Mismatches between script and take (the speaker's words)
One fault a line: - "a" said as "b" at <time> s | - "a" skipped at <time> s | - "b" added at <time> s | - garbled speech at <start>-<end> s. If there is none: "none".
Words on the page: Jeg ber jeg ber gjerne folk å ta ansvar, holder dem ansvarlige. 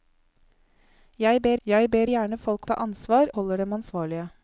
none